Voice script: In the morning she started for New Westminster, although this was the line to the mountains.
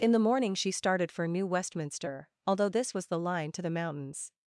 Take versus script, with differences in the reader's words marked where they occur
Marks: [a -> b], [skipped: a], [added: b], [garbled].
In the morning she started for New Westminster, although this was the line to the mountains.